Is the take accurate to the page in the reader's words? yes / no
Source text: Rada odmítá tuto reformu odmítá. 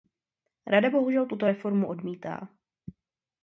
no